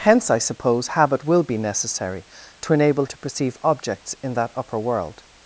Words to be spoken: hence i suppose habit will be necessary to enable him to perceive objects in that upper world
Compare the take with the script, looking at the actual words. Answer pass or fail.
fail